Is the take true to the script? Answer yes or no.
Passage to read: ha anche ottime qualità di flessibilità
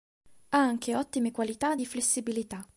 yes